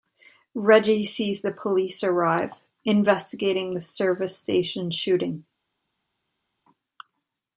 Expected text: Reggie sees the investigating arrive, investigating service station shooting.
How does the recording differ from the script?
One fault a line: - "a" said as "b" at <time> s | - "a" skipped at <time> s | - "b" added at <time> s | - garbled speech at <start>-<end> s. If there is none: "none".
- "investigating" said as "police" at 1.5 s
- "the" added at 3.7 s